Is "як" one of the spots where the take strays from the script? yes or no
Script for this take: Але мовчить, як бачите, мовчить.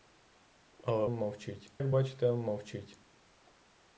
no